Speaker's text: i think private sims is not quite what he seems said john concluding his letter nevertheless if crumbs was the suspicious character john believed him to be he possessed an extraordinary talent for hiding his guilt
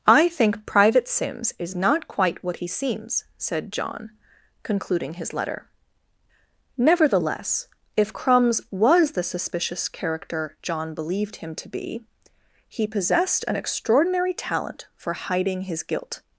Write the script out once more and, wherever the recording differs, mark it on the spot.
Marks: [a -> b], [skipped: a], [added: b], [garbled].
i think private sims is not quite what he seems said john concluding his letter nevertheless if crumbs was the suspicious character john believed him to be he possessed an extraordinary talent for hiding his guilt